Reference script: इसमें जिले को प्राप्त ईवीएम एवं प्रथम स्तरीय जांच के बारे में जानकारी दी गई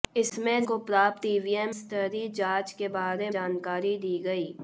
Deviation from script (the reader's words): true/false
true